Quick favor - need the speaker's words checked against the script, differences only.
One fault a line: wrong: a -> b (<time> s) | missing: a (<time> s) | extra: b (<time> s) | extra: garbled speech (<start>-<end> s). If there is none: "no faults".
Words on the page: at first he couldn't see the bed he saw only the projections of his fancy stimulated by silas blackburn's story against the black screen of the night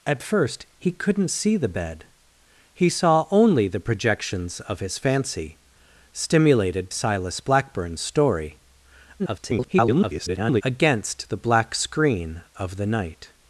missing: by (6.9 s)
extra: garbled speech (9.2-10.6 s)